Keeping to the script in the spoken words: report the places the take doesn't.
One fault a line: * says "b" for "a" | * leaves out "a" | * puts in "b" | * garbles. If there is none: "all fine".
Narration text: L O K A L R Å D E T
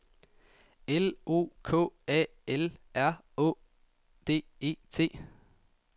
all fine